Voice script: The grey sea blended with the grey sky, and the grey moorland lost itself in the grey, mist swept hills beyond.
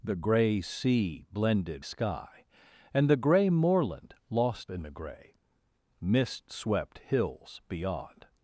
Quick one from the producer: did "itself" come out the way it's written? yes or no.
no